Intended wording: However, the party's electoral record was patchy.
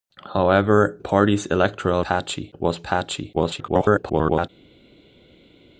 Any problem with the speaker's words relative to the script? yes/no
yes